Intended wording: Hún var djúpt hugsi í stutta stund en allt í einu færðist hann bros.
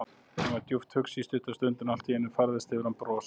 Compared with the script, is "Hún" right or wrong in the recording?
wrong